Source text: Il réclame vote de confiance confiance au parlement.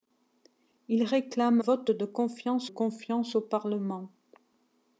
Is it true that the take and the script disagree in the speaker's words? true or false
false